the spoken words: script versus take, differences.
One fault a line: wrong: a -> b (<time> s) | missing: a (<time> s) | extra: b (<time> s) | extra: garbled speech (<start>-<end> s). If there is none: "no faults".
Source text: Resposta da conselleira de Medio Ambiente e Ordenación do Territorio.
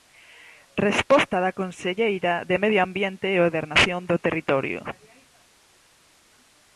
no faults